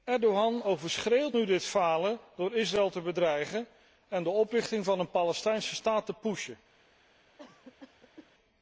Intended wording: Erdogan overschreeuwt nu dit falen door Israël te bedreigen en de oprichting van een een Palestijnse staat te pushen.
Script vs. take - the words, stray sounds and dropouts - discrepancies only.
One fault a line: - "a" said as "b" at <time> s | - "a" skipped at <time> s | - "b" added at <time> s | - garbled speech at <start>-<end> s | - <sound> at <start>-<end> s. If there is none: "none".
- "een" skipped at 5.1 s
- cough at 7.4-8.3 s